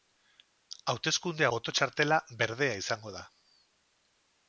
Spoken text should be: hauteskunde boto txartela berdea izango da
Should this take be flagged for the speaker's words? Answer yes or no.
no